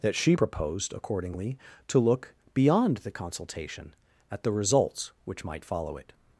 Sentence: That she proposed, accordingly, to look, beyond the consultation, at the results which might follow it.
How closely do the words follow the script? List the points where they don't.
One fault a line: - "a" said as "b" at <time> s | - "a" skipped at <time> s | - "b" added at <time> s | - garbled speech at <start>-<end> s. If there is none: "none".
none